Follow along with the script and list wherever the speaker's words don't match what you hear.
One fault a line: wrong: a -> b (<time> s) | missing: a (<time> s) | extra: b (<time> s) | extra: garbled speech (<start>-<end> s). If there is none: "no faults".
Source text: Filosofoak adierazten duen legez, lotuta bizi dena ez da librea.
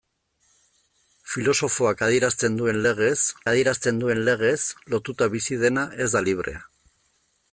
extra: adierazten duen legez (3.5 s)